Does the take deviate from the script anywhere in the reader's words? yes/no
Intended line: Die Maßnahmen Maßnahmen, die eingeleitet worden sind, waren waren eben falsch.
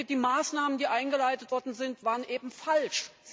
yes